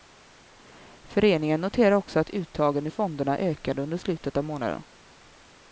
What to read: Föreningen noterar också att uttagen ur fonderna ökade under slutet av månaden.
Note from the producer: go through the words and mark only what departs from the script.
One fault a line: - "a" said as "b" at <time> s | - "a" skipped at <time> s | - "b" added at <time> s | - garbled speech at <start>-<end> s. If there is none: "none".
none